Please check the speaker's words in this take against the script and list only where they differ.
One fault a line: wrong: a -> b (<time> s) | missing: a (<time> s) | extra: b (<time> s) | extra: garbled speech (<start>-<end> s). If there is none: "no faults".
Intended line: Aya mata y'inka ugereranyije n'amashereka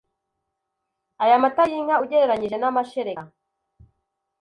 no faults